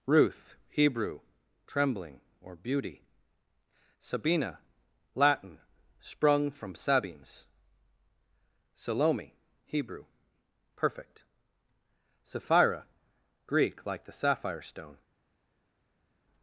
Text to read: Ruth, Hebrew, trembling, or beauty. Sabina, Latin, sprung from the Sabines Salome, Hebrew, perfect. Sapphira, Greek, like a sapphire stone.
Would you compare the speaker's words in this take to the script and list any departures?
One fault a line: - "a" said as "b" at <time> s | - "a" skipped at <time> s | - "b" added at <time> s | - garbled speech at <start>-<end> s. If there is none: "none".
- "the" skipped at 6.7 s
- "a" said as "the" at 14.1 s